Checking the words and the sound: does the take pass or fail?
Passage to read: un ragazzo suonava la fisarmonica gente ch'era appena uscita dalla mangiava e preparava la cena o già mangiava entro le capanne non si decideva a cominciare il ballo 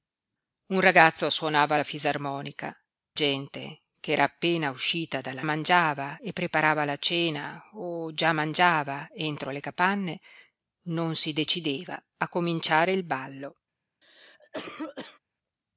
fail